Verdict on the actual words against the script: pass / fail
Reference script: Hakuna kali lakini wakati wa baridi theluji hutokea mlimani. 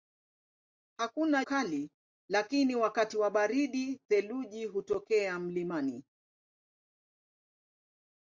pass